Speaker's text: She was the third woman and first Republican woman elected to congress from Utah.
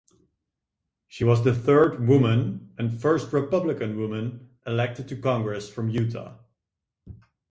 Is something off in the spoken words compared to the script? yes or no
no